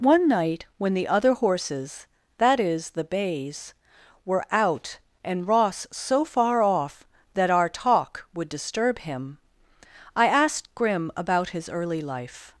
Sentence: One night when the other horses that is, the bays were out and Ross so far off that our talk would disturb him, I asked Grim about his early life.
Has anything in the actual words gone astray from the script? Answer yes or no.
no